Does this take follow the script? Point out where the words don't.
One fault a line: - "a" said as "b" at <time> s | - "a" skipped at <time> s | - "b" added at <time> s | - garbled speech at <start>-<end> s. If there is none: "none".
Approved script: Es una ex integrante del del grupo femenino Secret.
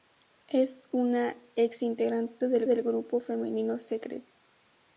none